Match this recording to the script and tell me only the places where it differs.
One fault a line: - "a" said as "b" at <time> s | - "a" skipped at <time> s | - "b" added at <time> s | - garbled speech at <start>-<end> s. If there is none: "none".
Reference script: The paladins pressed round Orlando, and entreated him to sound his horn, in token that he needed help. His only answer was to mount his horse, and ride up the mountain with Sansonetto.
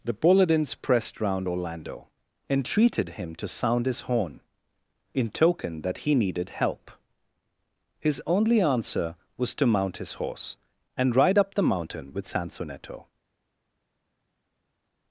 - "and" skipped at 2.1 s